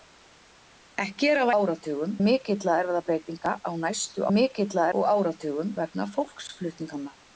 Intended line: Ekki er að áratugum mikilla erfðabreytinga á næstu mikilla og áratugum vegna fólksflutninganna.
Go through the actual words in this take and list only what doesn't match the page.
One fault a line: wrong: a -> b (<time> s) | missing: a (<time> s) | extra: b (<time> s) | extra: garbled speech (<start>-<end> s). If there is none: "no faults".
no faults